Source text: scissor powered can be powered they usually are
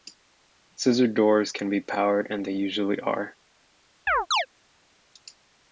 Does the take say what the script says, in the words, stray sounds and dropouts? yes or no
no